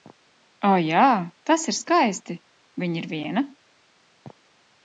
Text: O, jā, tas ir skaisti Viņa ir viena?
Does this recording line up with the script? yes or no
yes